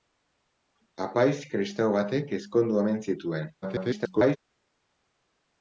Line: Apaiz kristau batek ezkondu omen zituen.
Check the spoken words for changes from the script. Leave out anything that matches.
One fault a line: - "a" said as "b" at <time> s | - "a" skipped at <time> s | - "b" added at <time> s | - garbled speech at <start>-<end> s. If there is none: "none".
- garbled speech at 3.6-4.4 s